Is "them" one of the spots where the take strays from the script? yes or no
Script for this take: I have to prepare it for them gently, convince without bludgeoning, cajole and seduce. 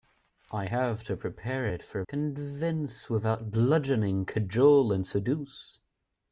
yes